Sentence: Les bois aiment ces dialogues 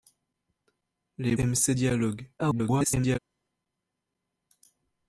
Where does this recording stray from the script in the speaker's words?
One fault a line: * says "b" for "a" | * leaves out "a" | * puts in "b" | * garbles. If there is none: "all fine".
* leaves out "bois"
* garbles